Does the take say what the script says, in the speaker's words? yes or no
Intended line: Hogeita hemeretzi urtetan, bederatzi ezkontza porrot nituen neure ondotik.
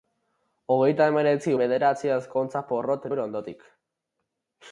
no